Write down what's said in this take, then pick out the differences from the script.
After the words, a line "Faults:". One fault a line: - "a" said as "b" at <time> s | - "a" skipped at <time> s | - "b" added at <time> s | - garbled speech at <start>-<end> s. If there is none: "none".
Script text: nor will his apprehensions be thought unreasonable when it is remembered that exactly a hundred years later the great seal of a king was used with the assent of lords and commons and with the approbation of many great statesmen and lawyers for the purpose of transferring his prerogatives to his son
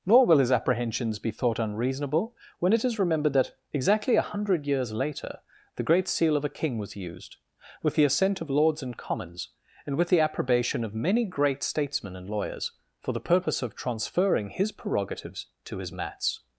nor will his apprehensions be thought unreasonable when it is remembered that exactly a hundred years later the great seal of a king was used with the assent of lords and commons and with the approbation of many great statesmen and lawyers for the purpose of transferring his prerogatives to his mats
Faults:
- "son" said as "mats" at 15.9 s